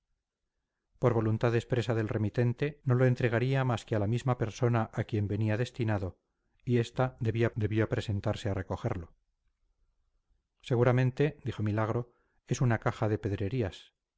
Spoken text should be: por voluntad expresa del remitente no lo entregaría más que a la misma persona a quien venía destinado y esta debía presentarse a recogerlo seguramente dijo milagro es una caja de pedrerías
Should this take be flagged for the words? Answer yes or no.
yes